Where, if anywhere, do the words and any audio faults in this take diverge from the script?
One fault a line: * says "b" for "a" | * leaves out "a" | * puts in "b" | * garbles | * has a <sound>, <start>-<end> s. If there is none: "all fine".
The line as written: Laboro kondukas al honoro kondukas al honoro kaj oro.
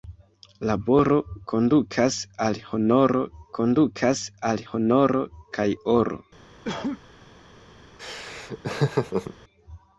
* has a cough, 6.6-7.0 s
* has a laugh, 8.0-9.3 s